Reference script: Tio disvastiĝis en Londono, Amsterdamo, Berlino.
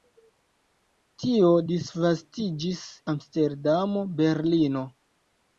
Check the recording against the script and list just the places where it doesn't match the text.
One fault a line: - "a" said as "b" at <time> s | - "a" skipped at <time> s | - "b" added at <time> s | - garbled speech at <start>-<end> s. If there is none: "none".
- "en Londono" skipped at 2.8 s